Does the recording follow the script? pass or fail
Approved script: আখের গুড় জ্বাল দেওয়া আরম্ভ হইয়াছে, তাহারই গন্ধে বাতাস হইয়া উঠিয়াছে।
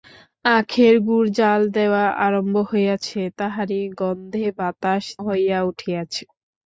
pass